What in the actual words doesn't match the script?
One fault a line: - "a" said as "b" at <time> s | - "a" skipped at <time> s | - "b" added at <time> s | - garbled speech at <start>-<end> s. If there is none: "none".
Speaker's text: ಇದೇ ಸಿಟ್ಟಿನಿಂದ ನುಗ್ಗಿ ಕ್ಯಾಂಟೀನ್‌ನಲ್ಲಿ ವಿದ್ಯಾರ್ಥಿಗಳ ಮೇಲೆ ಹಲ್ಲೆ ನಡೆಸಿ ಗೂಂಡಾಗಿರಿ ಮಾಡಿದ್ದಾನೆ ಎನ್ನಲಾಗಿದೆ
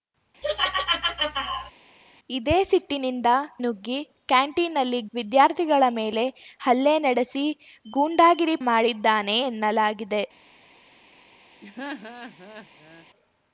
none